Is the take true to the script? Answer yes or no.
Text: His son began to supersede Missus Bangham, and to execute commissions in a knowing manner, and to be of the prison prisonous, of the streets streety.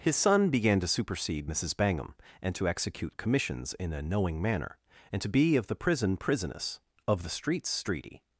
yes